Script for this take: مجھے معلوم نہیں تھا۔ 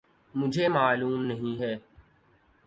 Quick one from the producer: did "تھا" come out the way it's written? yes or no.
no